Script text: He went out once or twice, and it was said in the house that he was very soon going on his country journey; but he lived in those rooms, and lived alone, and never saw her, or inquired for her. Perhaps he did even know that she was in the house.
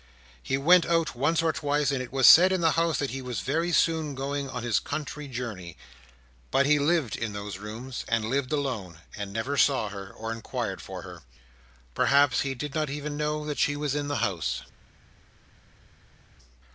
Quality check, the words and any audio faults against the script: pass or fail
fail